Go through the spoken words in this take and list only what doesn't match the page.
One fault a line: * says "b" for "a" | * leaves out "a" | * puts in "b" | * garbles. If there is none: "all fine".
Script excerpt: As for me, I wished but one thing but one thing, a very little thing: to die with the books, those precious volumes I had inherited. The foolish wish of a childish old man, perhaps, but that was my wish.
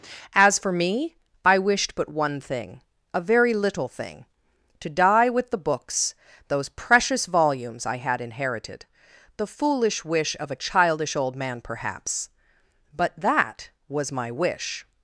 * leaves out "but one thing"